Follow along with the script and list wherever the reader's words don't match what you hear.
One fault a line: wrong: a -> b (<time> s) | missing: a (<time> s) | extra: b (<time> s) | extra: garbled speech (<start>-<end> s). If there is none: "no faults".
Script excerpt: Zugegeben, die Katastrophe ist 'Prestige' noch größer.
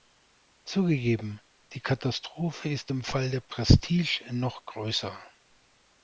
extra: im Fall der (2.9 s)